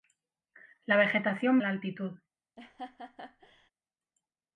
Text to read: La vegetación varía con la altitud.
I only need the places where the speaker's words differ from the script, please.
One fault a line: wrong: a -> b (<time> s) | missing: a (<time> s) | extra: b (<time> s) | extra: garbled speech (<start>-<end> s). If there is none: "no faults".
missing: varía con (1.6 s)